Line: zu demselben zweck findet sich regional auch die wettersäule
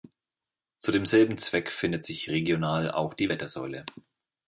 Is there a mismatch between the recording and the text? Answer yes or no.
no